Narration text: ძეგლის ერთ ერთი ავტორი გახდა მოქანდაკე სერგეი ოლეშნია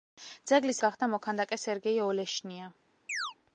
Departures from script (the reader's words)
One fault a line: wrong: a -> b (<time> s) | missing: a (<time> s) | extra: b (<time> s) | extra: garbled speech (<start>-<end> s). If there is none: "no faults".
missing: ერთ ერთი ავტორი (0.8 s)